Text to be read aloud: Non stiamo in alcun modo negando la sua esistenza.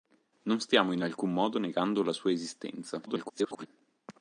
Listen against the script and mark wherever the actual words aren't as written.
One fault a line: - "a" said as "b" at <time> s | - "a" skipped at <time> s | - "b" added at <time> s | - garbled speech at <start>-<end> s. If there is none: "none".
- garbled speech at 3.1-3.7 s